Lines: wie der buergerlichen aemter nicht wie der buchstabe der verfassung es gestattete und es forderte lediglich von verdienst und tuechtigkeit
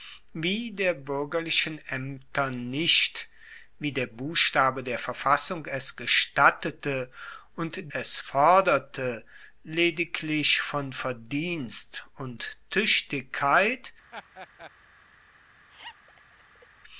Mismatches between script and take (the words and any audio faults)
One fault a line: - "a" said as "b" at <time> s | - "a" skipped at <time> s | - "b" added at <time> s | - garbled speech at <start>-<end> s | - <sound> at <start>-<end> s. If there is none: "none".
- laugh at 14.1-14.7 s
- laugh at 15.7-16.7 s